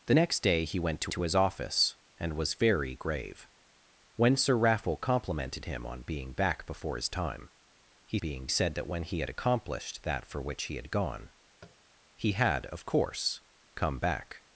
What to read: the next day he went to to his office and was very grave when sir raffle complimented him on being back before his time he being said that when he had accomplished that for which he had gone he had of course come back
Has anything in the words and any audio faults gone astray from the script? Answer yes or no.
yes